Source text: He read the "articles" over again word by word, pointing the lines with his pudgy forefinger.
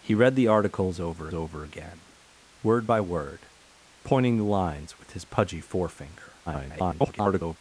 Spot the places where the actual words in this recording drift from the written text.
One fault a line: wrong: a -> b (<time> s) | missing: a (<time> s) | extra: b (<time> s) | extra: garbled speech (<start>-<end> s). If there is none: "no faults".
extra: over (1.3 s)
extra: garbled speech (6.5-7.6 s)